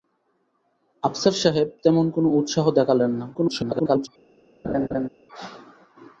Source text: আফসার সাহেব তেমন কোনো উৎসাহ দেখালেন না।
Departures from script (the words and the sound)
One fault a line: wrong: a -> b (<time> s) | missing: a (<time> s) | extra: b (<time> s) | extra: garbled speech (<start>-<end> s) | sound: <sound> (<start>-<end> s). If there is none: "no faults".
extra: garbled speech (3.3-4.1 s)
sound: laugh (4.6-5.1 s)